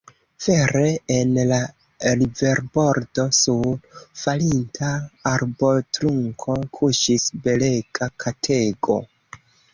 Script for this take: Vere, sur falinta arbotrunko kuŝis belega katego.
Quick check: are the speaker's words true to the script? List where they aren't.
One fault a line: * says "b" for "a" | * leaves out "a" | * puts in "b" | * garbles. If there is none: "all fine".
* puts in "en la riverbordo"